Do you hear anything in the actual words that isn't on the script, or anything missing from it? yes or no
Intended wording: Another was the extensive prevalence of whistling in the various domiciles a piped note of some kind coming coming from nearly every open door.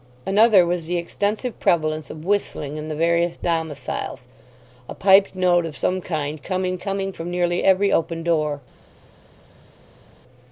no